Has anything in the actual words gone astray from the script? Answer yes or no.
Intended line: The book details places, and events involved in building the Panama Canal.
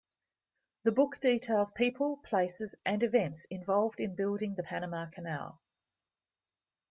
yes